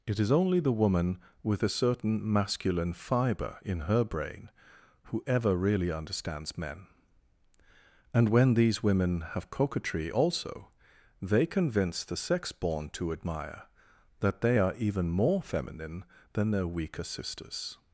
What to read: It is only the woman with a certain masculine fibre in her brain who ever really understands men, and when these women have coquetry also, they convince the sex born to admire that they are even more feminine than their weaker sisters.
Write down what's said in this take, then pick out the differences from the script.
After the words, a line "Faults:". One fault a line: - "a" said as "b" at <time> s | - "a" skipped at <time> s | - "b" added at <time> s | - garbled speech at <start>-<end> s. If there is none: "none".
It is only the woman with a certain masculine fibre in her brain who ever really understands men, and when these women have coquetry also, they convince the sex born to admire that they are even more feminine than their weaker sisters.
Faults:
none